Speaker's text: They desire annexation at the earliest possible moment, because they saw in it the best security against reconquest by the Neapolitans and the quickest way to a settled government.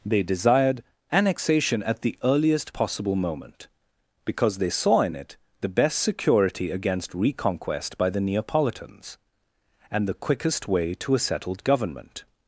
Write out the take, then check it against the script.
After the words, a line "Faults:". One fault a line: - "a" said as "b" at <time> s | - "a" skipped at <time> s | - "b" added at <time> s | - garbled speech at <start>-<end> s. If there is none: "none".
They desired annexation at the earliest possible moment, because they saw in it the best security against reconquest by the Neapolitans and the quickest way to a settled government.
Faults:
- "desire" said as "desired" at 0.2 s